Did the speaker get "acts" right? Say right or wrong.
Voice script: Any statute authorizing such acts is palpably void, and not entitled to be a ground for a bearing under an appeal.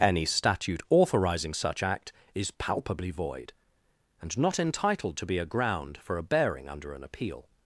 wrong